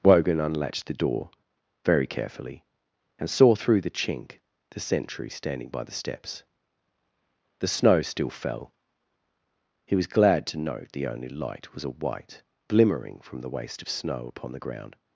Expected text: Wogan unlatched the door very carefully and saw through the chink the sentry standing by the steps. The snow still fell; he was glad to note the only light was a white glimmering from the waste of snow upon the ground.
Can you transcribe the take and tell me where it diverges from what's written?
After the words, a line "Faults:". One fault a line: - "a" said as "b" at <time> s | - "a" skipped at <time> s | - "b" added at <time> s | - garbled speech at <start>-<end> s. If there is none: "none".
Wogan unlatched the door very carefully and saw through the chink the sentry standing by the steps. The snow still fell; he was glad to note the only light was a white glimmering from the waste of snow upon the ground.
Faults:
none